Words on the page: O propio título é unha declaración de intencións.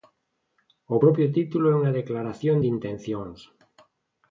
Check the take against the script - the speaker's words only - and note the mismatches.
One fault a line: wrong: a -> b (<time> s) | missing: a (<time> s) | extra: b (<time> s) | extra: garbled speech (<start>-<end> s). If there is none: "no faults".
no faults